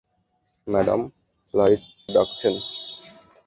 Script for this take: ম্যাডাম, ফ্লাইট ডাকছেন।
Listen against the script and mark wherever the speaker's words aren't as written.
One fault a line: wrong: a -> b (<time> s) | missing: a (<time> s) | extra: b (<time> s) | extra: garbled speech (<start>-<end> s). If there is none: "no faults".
no faults